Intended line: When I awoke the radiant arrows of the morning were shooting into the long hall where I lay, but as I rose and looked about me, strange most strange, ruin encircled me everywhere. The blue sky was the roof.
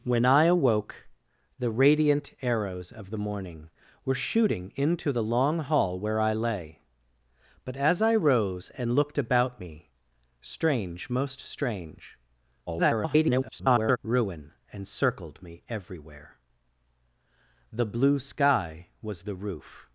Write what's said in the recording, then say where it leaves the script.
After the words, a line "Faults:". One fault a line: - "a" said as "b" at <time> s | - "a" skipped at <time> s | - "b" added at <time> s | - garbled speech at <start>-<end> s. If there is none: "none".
When I awoke the radiant arrows of the morning were shooting into the long hall where I lay, but as I rose and looked about me, strange most strange, [garbled] ruin encircled me everywhere. The blue sky was the roof.
Faults:
- garbled speech at 12.7-14.0 s